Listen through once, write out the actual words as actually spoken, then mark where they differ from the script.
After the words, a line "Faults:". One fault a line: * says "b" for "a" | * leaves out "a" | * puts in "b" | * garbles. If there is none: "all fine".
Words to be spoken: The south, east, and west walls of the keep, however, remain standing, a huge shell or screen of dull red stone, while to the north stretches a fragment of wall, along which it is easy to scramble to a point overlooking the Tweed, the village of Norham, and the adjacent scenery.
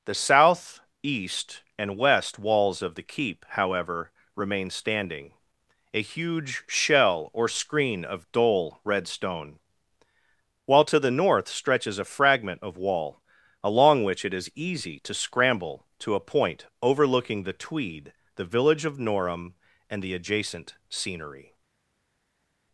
The south, east, and west walls of the keep, however, remain standing, a huge shell or screen of dull red stone, while to the north stretches a fragment of wall, along which it is easy to scramble to a point overlooking the Tweed, the village of Norham, and the adjacent scenery.
Faults:
all fine